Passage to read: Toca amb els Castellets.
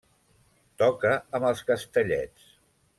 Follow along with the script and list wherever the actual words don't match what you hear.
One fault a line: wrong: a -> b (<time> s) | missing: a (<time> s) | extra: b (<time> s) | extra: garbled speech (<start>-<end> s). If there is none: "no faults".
no faults